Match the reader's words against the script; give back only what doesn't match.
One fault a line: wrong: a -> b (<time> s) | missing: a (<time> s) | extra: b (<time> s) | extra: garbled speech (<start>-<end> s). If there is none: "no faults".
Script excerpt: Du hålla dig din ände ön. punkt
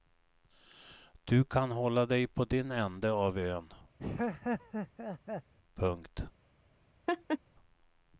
extra: kan (1.4 s)
extra: på (2.3 s)
extra: av (3.1 s)